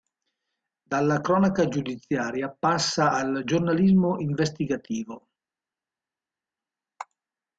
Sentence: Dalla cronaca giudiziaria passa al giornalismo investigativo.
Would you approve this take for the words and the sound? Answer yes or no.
yes